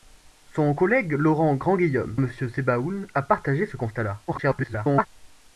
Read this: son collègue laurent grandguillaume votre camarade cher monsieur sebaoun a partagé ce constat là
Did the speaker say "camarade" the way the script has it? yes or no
no